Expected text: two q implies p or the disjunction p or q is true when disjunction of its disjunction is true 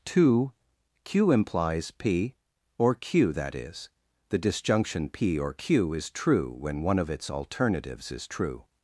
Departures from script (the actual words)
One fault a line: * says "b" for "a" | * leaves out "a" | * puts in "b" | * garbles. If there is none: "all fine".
* puts in "q that is"
* says "one" for "disjunction"
* says "alternatives" for "disjunction"